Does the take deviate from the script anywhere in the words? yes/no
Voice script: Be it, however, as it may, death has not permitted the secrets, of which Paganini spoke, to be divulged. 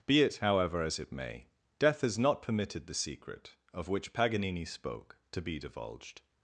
yes